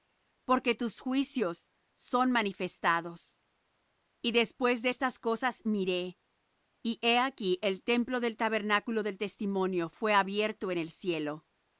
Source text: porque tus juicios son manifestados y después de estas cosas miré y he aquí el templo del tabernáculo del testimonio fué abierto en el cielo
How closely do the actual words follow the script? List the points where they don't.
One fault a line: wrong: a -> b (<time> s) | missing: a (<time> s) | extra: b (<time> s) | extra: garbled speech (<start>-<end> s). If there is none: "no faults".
no faults